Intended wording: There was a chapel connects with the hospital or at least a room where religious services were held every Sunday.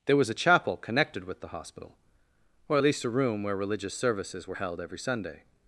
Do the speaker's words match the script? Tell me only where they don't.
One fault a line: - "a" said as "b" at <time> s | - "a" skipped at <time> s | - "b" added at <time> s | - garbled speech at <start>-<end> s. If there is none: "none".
- "connects" said as "connected" at 0.8 s